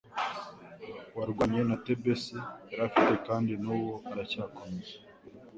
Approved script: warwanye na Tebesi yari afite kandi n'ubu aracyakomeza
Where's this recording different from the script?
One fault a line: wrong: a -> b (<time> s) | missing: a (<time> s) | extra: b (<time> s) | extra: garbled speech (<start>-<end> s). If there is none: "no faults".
no faults